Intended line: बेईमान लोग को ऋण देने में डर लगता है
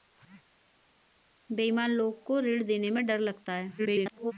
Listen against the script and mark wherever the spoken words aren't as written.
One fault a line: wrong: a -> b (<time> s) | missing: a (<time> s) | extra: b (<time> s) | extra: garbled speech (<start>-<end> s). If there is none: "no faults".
extra: garbled speech (3.8-4.3 s)